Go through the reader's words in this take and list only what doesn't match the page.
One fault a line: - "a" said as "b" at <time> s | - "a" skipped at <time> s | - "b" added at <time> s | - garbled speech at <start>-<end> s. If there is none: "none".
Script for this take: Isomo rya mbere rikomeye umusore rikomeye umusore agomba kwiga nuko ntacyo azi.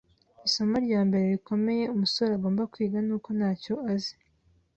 - "rikomeye umusore" skipped at 2.3 s